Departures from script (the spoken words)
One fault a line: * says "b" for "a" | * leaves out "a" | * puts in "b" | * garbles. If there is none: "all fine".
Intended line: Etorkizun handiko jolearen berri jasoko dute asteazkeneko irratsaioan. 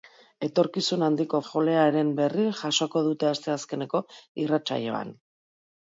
all fine